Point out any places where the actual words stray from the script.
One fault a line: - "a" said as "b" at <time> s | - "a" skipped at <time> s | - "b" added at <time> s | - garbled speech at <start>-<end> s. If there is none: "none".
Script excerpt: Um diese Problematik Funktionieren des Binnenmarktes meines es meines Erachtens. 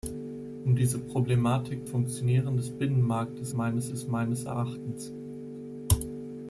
none